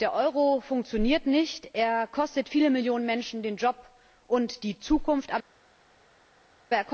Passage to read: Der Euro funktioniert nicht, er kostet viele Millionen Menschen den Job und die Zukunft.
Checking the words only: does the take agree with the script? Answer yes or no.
yes